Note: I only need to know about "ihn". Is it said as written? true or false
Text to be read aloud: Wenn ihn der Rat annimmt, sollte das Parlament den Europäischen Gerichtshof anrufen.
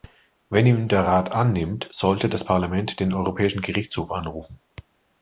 true